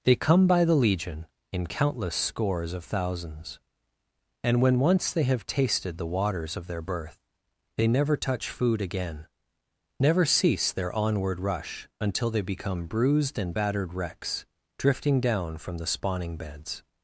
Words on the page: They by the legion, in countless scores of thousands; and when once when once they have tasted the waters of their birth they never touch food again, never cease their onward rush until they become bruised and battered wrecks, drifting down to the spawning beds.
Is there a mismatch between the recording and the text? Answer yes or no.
yes